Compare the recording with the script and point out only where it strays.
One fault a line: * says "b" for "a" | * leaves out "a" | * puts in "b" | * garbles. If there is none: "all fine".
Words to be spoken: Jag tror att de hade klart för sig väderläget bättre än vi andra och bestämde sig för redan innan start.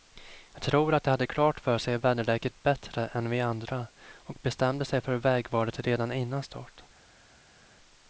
* puts in "vägvalet"